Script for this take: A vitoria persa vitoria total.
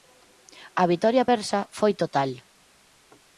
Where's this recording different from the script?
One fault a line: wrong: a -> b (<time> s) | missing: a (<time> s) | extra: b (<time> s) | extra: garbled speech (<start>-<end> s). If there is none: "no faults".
wrong: vitoria -> foi (1.8 s)